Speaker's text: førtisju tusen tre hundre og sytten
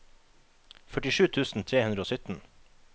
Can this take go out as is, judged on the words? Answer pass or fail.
pass